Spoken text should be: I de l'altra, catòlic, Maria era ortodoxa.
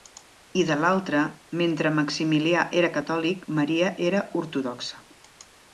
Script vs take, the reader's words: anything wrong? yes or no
yes